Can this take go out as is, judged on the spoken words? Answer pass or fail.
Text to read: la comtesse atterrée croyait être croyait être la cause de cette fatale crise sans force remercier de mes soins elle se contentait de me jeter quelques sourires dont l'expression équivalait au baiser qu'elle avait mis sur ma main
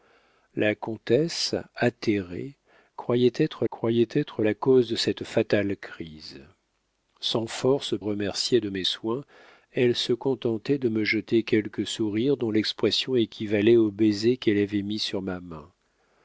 pass